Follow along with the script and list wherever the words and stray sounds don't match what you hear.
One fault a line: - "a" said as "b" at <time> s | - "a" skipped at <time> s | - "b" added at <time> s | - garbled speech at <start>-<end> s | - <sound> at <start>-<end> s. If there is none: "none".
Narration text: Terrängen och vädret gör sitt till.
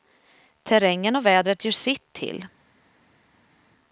none